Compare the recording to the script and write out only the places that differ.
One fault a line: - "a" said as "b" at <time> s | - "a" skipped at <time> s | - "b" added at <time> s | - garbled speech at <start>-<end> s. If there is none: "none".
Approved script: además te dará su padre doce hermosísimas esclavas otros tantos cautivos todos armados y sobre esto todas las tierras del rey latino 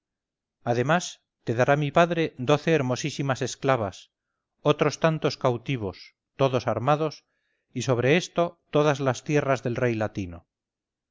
- "su" said as "mi" at 1.8 s